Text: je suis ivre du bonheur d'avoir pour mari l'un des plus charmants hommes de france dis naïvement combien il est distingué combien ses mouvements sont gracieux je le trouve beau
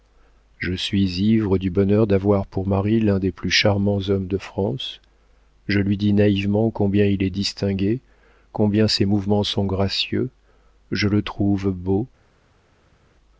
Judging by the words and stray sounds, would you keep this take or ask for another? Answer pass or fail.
fail